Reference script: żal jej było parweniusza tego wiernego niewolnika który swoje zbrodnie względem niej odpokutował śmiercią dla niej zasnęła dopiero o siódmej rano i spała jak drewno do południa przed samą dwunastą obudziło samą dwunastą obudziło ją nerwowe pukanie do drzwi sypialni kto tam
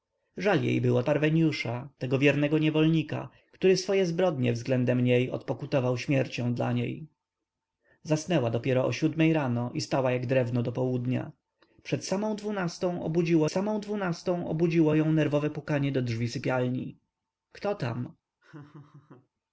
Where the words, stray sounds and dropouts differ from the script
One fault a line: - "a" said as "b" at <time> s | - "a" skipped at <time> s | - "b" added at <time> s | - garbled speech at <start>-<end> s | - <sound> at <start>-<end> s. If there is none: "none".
- laugh at 18.4-19.3 s